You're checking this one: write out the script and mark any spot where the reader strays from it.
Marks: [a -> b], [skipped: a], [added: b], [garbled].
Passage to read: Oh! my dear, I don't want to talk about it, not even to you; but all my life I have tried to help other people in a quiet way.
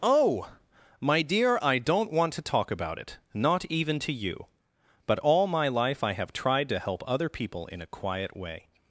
Oh! my dear, I don't want to talk about it, not even to you; but all my life I have tried to help other people in a quiet way.